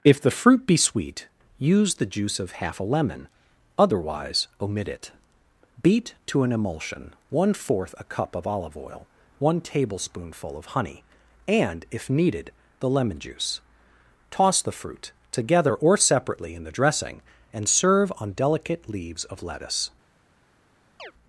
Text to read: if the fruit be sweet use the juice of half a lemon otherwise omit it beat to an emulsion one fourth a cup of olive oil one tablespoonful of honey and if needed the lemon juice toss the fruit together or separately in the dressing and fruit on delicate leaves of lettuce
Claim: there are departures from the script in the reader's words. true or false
true